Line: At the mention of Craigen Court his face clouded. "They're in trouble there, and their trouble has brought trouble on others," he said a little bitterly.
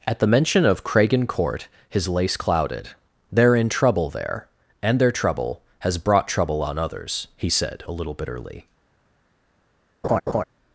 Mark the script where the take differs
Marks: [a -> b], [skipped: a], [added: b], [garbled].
At the mention of Craigen Court his [face -> lace] clouded. "They're in trouble there, and their trouble has brought trouble on others," he said a little bitterly.